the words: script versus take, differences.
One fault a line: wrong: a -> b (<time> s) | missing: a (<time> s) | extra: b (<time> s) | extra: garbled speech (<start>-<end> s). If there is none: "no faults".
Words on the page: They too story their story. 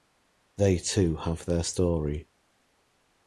wrong: story -> have (1.2 s)